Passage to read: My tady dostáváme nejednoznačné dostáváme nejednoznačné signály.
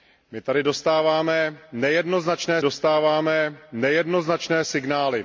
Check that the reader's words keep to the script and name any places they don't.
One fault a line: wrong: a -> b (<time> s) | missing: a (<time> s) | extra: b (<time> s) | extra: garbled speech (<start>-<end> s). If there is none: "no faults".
no faults